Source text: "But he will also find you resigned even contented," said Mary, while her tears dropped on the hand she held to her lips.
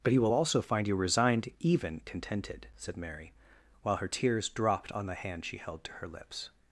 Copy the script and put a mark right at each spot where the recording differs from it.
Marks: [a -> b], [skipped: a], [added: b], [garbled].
"But he will also find you resigned even contented," said Mary, while her tears dropped on the hand she held to her lips.